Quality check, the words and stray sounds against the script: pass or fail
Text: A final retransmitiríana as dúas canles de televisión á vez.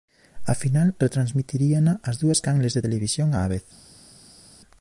pass